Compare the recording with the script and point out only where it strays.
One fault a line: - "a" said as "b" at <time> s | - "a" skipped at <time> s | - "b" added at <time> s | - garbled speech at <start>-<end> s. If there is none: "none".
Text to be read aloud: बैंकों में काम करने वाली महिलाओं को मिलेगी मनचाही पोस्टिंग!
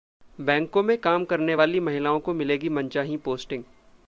none